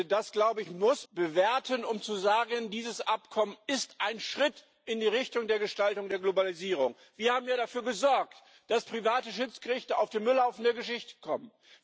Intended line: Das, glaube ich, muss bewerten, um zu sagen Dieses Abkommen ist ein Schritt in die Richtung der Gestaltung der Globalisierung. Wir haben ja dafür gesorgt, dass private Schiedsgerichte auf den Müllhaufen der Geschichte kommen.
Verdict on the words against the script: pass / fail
pass